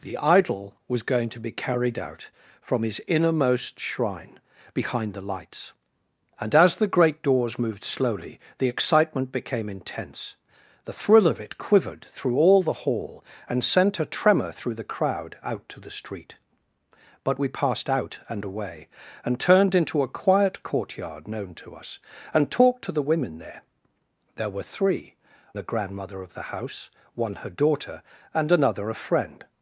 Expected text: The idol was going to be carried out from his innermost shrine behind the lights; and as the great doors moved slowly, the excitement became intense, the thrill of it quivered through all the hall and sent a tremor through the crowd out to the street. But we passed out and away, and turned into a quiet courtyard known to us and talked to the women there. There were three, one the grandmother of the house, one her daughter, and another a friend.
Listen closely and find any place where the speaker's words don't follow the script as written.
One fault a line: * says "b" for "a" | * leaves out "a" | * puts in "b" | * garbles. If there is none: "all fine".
* leaves out "one"